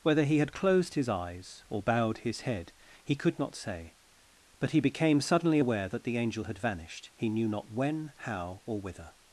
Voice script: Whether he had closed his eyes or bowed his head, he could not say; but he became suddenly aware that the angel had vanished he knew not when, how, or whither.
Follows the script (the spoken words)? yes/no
yes